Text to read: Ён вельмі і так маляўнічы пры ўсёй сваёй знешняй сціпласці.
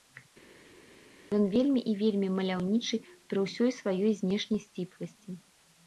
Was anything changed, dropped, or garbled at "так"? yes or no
yes